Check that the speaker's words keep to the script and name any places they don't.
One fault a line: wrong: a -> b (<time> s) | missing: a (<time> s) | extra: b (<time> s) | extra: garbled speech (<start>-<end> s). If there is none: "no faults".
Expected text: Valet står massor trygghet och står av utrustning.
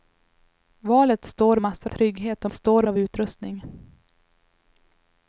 no faults